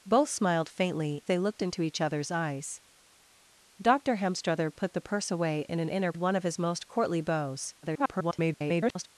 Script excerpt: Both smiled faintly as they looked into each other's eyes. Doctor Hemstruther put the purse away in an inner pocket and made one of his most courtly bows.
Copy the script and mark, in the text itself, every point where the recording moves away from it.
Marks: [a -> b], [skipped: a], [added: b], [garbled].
Both smiled faintly [skipped: as] they looked into each other's eyes. Doctor Hemstruther put the purse away in an inner [skipped: pocket and made] one of his most courtly bows. [garbled]